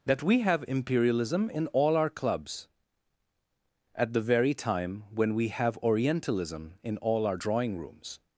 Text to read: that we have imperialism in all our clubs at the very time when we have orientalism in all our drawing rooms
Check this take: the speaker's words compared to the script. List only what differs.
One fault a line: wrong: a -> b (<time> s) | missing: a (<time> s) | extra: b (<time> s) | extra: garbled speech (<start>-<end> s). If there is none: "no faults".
no faults